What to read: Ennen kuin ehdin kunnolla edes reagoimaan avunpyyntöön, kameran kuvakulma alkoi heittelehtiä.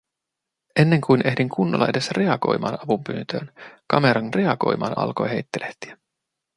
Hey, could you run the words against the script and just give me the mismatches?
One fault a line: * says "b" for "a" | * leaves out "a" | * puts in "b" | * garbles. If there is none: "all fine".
* says "reagoimaan" for "kuvakulma"